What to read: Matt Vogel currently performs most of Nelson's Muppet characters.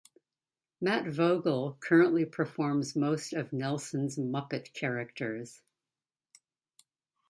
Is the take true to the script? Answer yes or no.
yes